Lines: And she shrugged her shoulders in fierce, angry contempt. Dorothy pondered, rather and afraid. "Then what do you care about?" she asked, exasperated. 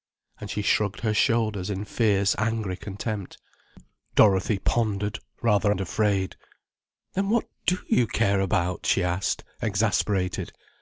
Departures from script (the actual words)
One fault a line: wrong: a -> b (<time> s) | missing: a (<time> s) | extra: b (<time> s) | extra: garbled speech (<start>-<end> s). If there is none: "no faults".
no faults